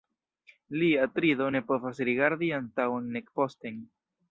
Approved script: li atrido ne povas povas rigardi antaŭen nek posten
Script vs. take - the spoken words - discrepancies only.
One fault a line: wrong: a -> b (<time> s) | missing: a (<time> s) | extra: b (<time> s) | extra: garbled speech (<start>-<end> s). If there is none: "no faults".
missing: povas (2.0 s)